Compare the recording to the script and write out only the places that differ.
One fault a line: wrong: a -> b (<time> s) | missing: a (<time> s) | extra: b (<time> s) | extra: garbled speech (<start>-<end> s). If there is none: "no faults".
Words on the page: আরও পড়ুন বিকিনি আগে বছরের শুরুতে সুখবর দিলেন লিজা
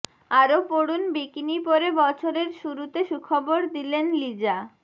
wrong: আগে -> পরে (1.7 s)